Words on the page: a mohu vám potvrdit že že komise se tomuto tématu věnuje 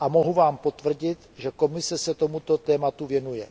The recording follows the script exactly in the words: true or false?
false